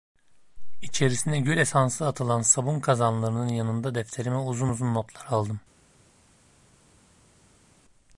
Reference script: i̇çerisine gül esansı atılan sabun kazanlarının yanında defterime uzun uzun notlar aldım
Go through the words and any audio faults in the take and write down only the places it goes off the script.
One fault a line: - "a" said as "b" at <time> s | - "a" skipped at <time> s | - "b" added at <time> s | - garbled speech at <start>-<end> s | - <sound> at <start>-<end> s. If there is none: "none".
none